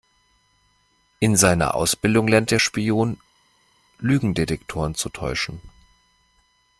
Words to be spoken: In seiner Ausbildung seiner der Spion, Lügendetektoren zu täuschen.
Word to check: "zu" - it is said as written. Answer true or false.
true